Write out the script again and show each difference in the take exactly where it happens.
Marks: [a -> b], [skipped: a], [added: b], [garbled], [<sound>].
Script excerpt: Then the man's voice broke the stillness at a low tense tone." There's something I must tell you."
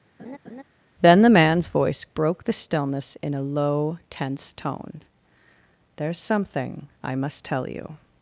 [laugh] Then the man's voice broke the stillness [at -> in] a low tense tone." There's something I must tell you."